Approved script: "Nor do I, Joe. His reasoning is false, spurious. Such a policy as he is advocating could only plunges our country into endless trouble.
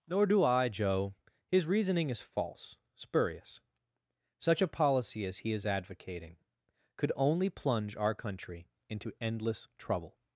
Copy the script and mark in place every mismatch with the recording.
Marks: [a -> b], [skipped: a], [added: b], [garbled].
"Nor do I, Joe. His reasoning is false, spurious. Such a policy as he is advocating could only [plunges -> plunge] our country into endless trouble.